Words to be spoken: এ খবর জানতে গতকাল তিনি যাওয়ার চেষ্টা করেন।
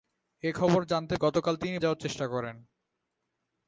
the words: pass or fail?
pass